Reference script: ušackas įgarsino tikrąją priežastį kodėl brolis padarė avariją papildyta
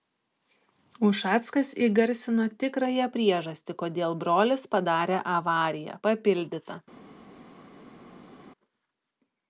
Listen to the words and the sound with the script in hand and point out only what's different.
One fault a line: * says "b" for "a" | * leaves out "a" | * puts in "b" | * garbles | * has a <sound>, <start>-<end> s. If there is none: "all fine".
all fine